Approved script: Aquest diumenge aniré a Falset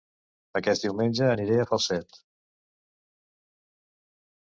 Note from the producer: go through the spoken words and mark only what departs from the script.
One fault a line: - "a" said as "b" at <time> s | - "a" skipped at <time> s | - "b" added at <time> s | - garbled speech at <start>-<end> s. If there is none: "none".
none